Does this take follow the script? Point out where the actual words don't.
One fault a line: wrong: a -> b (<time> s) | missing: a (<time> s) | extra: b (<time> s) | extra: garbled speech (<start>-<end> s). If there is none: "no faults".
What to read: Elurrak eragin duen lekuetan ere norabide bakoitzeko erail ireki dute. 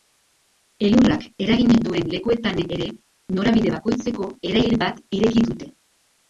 extra: bat (4.9 s)